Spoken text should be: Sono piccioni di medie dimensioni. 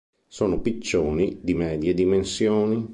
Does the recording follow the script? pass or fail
pass